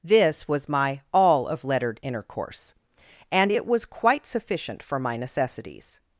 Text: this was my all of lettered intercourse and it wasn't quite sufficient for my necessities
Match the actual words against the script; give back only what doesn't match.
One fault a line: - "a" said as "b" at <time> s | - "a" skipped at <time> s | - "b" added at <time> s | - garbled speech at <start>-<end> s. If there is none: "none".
- "wasn't" said as "was" at 3.7 s